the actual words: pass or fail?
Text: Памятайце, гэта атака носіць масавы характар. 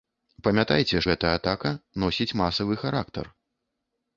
pass